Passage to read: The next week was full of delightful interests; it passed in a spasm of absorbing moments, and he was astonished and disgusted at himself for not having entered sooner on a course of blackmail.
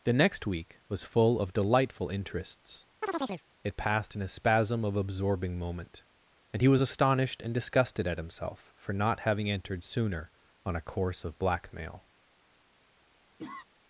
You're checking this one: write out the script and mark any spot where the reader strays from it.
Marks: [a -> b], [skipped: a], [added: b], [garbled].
The next week was full of delightful interests; it passed in a spasm of absorbing [moments, -> moment] and he was astonished and disgusted at himself for not having entered sooner on a course of blackmail.